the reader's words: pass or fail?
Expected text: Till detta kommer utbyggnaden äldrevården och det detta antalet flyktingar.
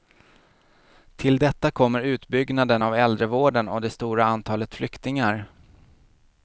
fail